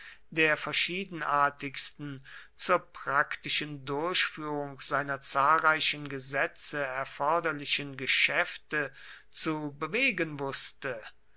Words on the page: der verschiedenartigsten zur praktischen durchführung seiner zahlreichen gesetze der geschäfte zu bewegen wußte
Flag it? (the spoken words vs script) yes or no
yes